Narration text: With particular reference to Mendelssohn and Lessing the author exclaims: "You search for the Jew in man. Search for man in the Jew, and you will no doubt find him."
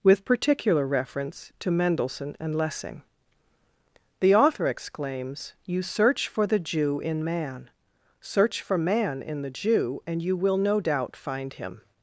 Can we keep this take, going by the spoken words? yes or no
yes